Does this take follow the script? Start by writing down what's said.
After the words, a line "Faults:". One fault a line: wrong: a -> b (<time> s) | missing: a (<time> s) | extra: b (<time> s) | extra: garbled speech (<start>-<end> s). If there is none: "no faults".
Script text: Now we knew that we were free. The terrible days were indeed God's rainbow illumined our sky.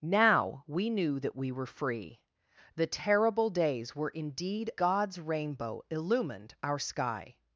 Now we knew that we were free. The terrible days were indeed God's rainbow illumined our sky.
Faults:
no faults